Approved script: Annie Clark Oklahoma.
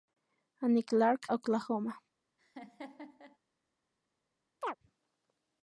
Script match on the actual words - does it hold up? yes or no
yes